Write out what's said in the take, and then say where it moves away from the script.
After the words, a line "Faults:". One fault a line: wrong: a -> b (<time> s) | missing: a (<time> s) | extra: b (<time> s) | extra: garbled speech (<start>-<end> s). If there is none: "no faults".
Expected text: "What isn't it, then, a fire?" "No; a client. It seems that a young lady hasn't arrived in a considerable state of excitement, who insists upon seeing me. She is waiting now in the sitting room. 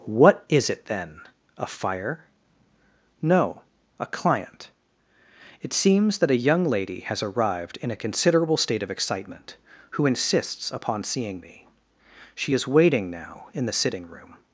"What is it, then, a fire?" "No; a client. It seems that a young lady has arrived in a considerable state of excitement, who insists upon seeing me. She is waiting now in the sitting room.
Faults:
wrong: isn't -> is (0.5 s)
wrong: hasn't -> has (7.0 s)